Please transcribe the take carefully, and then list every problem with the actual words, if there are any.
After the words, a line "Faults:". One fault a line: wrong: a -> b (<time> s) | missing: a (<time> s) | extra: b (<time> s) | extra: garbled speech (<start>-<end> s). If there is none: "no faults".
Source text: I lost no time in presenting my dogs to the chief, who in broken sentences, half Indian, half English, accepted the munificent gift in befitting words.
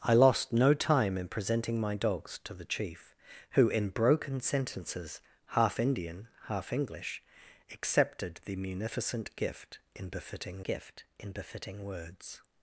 I lost no time in presenting my dogs to the chief, who in broken sentences, half Indian, half English, accepted the munificent gift in befitting gift in befitting words.
Faults:
extra: gift in befitting (10.6 s)